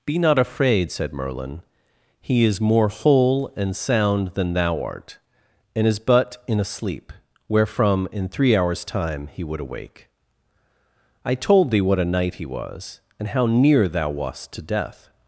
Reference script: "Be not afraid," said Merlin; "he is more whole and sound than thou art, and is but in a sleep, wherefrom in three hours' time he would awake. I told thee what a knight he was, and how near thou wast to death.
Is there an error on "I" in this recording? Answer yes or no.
no